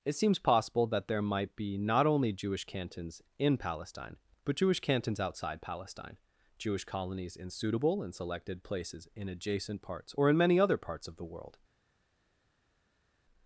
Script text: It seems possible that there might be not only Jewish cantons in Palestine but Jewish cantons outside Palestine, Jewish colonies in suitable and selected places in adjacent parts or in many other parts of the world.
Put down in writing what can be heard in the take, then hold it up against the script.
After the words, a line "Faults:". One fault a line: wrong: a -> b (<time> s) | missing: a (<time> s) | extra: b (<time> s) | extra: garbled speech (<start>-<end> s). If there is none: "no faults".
It seems possible that there might be not only Jewish cantons in Palestine but Jewish cantons outside Palestine, Jewish colonies in suitable and selected places in adjacent parts or in many other parts of the world.
Faults:
no faults